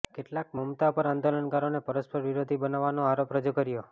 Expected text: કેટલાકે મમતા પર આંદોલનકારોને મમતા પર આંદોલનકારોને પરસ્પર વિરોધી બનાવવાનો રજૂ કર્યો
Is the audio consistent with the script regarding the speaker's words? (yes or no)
no